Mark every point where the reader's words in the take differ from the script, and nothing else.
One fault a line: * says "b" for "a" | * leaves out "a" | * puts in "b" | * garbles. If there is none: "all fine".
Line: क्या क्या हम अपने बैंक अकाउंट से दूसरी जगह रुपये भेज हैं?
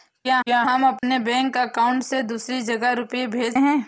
all fine